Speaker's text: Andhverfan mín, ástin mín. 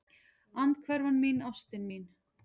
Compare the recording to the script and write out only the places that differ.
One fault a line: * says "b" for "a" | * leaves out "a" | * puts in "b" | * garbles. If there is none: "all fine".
all fine